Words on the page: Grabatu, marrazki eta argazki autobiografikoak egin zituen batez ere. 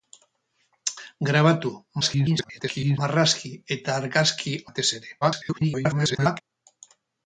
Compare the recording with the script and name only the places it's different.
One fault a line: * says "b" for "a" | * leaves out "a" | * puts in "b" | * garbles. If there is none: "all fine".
* garbles
* leaves out "autobiografikoak egin zituen"
* garbles